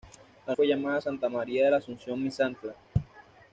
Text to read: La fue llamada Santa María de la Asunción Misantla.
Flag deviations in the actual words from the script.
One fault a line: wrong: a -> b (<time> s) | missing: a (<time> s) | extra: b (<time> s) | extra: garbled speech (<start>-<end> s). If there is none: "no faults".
no faults